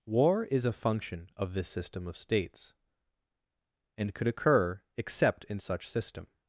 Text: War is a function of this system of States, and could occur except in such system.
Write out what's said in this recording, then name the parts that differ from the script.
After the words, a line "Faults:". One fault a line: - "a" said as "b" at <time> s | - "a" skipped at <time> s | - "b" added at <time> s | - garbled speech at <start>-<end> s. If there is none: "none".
War is a function of this system of States, and could occur except in such system.
Faults:
none